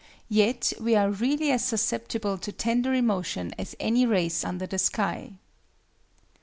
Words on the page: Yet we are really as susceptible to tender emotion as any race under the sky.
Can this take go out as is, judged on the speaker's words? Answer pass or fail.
pass